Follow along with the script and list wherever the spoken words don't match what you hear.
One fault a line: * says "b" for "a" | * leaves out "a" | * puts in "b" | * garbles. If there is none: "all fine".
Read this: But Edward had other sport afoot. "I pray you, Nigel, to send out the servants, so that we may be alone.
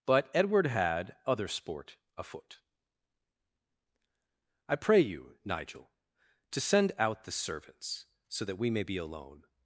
all fine